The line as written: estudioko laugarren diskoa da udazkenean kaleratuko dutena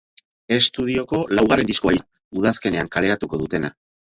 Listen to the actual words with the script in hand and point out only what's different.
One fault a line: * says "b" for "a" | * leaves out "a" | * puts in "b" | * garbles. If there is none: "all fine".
all fine